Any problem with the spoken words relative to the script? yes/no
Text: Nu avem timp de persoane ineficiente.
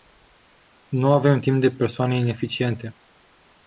no